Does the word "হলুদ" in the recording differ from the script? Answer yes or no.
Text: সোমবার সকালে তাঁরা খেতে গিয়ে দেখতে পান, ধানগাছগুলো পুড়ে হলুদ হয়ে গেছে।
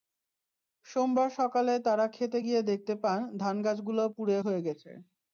yes